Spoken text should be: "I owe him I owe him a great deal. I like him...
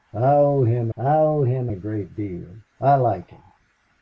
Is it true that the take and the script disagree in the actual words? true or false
false